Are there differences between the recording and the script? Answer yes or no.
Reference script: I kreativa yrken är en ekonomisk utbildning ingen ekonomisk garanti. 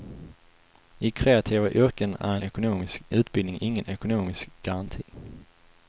no